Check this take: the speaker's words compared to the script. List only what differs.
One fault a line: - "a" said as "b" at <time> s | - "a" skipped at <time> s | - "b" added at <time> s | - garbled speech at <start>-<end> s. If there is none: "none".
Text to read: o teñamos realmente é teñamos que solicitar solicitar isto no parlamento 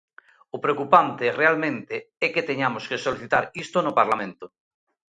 - "teñamos" said as "preocupante" at 0.6 s
- "que" added at 2.3 s
- "solicitar" skipped at 3.4 s